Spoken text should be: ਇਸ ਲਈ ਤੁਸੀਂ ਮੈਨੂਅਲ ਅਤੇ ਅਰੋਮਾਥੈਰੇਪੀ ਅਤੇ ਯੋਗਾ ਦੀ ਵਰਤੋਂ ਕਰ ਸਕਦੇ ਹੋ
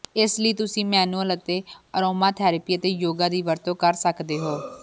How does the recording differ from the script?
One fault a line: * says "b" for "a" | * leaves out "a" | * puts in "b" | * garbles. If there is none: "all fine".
all fine